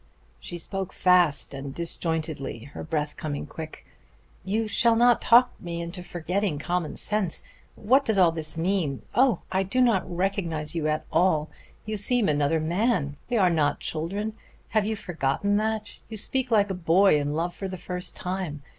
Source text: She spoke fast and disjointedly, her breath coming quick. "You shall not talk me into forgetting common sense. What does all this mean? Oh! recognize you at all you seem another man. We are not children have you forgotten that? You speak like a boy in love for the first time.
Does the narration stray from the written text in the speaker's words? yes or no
yes